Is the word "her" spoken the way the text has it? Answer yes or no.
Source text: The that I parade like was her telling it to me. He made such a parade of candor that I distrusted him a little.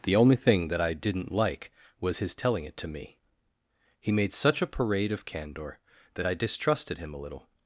no